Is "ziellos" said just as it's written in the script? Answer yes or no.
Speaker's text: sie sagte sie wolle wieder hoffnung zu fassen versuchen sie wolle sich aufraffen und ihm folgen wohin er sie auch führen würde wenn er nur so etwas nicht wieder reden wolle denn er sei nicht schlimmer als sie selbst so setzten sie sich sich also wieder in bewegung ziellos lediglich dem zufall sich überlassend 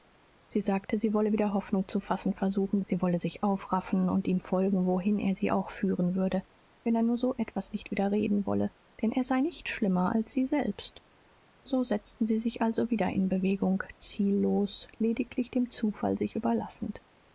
yes